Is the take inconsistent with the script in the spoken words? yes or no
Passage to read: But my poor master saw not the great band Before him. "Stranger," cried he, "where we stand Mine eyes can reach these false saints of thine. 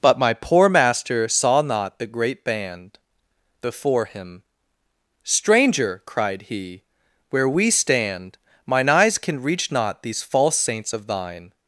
yes